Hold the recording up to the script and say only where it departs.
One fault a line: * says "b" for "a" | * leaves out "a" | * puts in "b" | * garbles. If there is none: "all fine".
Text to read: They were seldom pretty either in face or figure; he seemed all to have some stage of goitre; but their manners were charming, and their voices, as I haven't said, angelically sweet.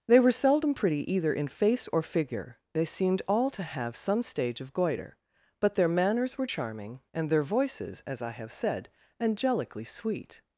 * says "they" for "he"
* says "have" for "haven't"